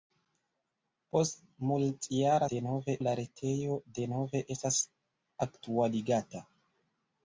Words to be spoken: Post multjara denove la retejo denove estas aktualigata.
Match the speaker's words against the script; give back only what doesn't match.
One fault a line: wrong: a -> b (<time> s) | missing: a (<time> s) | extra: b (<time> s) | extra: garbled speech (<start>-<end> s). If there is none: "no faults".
no faults